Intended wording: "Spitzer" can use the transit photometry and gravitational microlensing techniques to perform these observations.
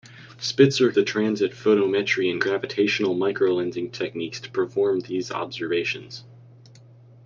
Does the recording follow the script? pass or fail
fail